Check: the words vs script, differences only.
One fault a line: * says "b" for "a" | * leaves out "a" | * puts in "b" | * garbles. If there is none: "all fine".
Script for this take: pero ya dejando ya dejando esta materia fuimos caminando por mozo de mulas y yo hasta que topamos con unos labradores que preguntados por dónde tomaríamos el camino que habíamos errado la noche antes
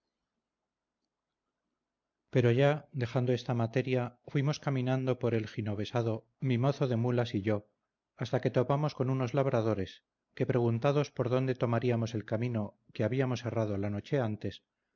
* leaves out "ya dejando"
* puts in "el ginovesado mi"